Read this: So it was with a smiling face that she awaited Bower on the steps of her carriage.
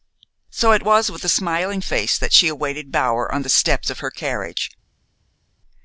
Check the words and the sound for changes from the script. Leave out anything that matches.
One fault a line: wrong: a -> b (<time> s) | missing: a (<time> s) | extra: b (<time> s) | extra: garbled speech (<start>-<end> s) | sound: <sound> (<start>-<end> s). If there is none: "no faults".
no faults